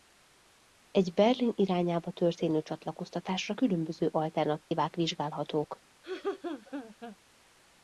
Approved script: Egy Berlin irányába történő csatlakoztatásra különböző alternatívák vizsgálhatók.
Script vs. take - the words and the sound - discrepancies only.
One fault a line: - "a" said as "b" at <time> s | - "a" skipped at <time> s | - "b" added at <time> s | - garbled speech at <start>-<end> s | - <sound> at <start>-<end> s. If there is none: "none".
- dropout at 4.6-4.7 s
- laugh at 6.0-7.2 s